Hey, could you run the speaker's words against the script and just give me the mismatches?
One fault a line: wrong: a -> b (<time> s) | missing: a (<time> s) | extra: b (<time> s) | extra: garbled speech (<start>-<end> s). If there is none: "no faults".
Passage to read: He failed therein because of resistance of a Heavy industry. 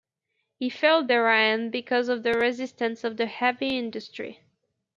extra: the (2.2 s)
wrong: a -> the (3.2 s)